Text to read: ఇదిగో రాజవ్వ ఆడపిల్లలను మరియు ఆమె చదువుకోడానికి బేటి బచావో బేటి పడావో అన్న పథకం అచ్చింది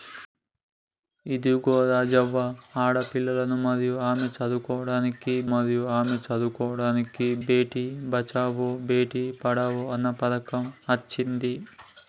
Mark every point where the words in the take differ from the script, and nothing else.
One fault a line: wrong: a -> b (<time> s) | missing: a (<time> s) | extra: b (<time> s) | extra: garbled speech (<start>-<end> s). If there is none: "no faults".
extra: మరియు ఆమె చదువుకోడానికి (5.5 s)